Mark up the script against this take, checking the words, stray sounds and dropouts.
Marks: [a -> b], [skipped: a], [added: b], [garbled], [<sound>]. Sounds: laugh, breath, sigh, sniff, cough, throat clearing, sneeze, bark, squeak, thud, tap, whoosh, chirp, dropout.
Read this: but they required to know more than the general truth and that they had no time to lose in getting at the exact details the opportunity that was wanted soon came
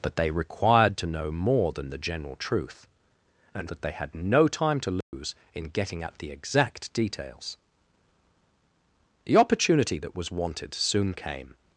but they required to know more than the general truth and that they had no time to lose [dropout] in getting at the exact details the opportunity that was wanted soon came